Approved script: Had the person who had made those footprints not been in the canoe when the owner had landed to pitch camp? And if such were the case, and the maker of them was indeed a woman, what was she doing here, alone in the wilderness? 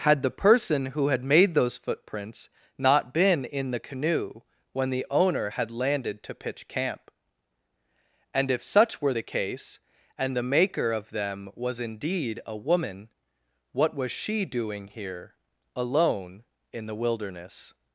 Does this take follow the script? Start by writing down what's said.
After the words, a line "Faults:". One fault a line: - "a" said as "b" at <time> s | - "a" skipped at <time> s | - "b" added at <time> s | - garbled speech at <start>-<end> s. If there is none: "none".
Had the person who had made those footprints not been in the canoe when the owner had landed to pitch camp? And if such were the case, and the maker of them was indeed a woman, what was she doing here, alone in the wilderness?
Faults:
none